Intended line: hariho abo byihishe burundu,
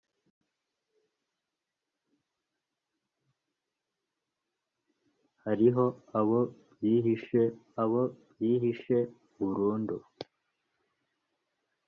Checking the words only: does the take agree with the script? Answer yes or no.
no